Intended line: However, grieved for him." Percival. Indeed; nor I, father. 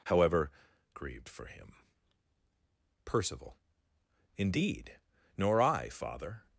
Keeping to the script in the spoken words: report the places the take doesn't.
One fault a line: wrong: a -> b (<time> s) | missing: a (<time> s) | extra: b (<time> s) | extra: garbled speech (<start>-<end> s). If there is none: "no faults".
no faults